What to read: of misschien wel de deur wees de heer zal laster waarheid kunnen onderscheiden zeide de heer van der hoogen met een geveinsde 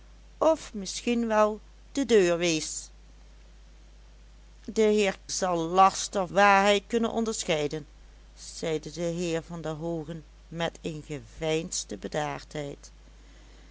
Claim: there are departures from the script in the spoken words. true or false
false